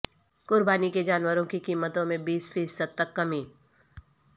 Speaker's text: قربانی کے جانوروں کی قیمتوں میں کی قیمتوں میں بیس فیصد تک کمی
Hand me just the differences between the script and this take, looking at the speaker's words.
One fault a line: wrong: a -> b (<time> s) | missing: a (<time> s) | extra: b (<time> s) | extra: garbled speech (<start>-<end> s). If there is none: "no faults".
missing: کی قیمتوں میں (2.2 s)